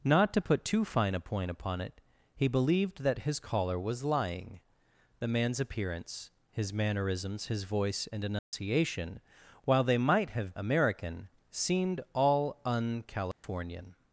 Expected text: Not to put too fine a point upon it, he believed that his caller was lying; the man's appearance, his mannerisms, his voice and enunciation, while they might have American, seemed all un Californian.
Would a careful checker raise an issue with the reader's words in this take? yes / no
no